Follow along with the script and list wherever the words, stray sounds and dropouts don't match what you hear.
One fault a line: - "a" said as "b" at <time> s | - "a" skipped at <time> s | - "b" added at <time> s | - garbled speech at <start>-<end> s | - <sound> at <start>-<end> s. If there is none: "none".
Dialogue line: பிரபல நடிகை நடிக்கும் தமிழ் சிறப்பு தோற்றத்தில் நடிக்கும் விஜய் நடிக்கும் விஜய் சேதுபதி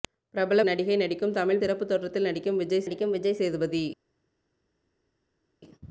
none